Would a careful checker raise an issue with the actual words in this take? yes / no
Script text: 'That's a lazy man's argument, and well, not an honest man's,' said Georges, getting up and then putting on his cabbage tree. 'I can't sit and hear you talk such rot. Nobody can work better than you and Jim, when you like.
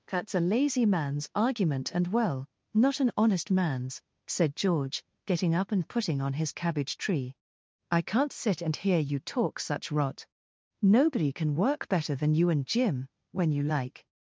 yes